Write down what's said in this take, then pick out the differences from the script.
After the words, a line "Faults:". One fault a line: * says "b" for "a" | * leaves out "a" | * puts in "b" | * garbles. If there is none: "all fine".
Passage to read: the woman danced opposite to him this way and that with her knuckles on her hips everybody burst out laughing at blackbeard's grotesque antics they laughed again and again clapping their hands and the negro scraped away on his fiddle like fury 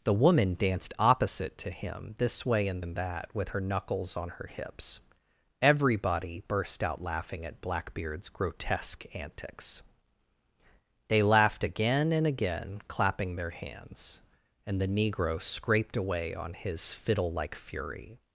the woman danced opposite to him this way and and that with her knuckles on her hips everybody burst out laughing at blackbeard's grotesque antics they laughed again and again clapping their hands and the negro scraped away on his fiddle like fury
Faults:
* puts in "and"